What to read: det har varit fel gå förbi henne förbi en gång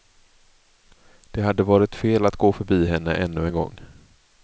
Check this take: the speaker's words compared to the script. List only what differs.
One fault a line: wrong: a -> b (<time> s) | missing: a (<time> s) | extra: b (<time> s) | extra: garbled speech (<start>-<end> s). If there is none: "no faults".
wrong: har -> hade (1.4 s)
extra: att (2.2 s)
wrong: förbi -> ännu (3.1 s)